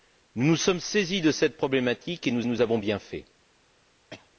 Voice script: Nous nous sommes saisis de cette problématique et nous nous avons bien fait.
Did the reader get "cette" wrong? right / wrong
right